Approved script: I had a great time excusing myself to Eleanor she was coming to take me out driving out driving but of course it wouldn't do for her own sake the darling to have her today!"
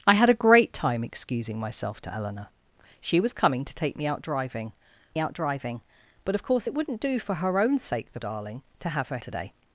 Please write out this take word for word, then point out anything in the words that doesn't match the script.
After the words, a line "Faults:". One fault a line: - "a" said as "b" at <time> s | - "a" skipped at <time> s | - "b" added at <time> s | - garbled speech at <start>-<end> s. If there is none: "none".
I had a great time excusing myself to Eleanor she was coming to take me out driving out driving but of course it wouldn't do for her own sake the darling to have her today!"
Faults:
none